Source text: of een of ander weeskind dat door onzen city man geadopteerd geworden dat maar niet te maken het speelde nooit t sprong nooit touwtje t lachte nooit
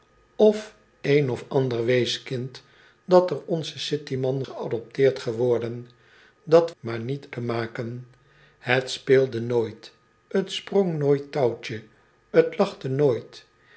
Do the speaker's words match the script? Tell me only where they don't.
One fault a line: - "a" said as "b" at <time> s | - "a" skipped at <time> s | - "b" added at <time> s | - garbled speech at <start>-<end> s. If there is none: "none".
none